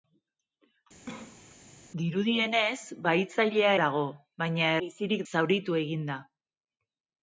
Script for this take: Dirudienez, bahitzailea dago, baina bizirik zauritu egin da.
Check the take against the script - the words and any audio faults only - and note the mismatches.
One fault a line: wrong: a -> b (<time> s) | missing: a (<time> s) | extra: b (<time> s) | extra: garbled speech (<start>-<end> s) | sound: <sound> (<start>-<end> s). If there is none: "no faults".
sound: cough (1.1-1.5 s)